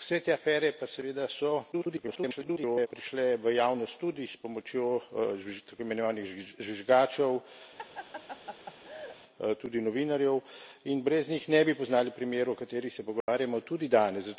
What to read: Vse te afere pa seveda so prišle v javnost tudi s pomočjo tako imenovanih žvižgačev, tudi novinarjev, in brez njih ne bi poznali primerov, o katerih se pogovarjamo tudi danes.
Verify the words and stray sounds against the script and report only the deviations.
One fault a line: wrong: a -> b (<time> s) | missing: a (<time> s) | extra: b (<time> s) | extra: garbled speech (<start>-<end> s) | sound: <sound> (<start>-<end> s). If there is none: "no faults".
extra: garbled speech (1.7-2.9 s)
sound: laugh (7.8-9.2 s)
sound: dropout (13.2-13.3 s)